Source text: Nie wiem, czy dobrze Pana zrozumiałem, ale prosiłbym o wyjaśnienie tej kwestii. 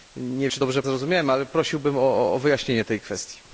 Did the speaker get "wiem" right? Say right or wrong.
wrong